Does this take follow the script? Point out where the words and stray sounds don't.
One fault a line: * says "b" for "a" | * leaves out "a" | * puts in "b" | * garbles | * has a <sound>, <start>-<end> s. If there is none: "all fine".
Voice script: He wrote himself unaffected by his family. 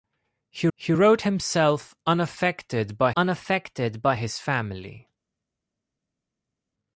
* puts in "he"
* puts in "unaffected by"